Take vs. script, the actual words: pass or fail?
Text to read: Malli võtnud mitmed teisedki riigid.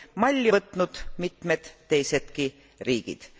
pass